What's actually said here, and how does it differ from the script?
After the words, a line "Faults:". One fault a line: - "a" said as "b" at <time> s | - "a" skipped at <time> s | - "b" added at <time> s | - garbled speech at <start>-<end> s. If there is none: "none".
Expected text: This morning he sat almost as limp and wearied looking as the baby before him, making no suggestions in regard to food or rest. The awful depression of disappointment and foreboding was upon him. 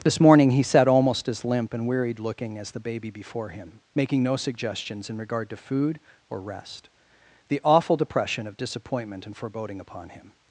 This morning he sat almost as limp and wearied looking as the baby before him, making no suggestions in regard to food or rest. The awful depression of disappointment and foreboding upon him.
Faults:
- "was" skipped at 9.8 s